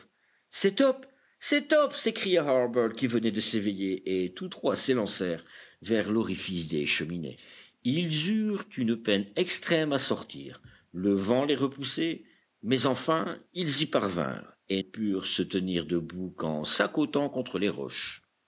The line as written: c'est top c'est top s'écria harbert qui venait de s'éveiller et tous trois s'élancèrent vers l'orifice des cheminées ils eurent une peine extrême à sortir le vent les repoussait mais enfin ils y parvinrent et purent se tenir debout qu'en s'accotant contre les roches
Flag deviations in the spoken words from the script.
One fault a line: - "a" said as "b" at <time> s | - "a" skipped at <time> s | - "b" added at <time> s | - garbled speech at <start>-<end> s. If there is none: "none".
none